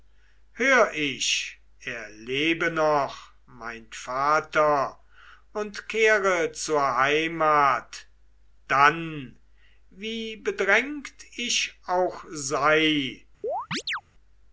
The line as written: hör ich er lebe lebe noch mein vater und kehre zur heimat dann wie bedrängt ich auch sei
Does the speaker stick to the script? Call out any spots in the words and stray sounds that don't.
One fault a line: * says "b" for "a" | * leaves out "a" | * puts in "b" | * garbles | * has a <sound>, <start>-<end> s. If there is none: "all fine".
* leaves out "lebe"
* has a chirp, 13.4-14.0 s